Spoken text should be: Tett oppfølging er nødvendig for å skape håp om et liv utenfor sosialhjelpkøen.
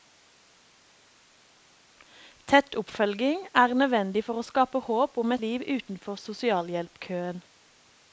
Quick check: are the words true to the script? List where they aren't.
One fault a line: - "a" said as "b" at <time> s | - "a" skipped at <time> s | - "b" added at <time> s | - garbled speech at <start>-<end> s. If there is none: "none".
- "et" skipped at 5.3 s